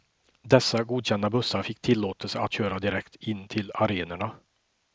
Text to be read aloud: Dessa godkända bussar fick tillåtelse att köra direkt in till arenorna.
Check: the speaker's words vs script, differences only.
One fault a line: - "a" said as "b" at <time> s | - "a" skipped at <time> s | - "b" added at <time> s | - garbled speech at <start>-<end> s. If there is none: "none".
none